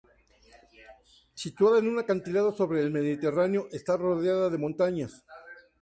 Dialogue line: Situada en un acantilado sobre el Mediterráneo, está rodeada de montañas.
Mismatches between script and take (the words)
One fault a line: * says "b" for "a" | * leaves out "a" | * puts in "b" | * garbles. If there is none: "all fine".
all fine